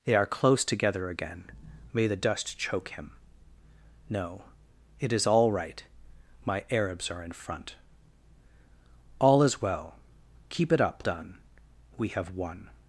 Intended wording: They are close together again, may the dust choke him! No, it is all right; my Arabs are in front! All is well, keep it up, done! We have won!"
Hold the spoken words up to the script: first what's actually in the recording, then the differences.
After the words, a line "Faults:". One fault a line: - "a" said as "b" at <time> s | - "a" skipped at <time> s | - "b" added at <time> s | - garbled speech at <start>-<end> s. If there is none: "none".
They are close together again, may the dust choke him! No, it is all right; my Arabs are in front! All is well, keep it up, done! We have won!"
Faults:
none